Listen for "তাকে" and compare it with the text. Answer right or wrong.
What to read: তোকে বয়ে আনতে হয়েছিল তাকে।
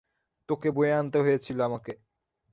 wrong